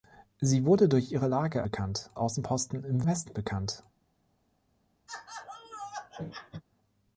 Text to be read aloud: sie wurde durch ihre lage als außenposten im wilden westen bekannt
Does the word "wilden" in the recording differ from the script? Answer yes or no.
yes